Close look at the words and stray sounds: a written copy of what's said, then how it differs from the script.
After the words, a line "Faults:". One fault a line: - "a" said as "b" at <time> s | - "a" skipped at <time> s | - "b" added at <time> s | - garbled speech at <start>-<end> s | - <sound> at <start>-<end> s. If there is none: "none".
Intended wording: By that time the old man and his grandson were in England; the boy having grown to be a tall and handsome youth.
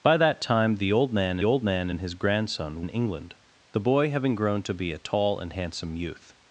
By that time the old man old man and his grandson in England; the boy having grown to be a tall and handsome youth.
Faults:
- "old man" added at 1.4 s
- "were" skipped at 2.8 s